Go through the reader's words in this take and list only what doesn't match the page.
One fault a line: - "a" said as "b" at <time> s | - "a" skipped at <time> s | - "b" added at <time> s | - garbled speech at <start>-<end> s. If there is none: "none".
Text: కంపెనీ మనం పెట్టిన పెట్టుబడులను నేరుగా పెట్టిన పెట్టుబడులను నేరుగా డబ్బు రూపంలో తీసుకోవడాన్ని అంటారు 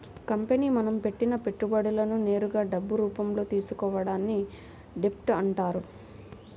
- "పెట్టిన పెట్టుబడులను నేరుగా" skipped at 2.6 s
- "డెబ్ట్" added at 5.0 s